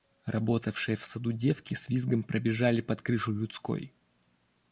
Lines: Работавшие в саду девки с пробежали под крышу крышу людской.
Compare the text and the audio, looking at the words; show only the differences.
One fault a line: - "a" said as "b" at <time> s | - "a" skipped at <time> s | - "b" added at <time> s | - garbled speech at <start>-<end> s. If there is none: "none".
- "визгом" added at 1.9 s
- "крышу" skipped at 3.3 s